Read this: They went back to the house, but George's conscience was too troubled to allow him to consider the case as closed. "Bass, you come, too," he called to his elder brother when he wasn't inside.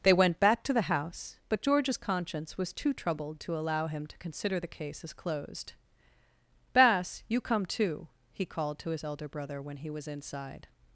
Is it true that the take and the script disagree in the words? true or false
true